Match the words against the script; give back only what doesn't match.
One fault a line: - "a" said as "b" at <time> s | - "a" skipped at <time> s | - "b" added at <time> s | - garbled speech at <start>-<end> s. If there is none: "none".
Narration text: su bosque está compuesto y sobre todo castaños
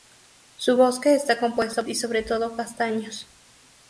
none